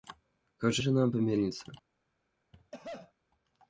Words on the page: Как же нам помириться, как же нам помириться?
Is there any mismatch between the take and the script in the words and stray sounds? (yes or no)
yes